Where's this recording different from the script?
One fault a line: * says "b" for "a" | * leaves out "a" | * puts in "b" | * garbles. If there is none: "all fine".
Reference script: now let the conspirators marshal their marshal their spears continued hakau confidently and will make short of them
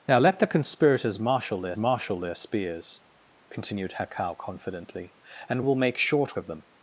all fine